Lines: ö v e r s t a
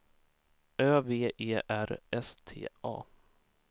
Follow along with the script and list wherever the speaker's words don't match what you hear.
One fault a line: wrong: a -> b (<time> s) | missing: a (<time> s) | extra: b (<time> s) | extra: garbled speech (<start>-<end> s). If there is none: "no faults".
no faults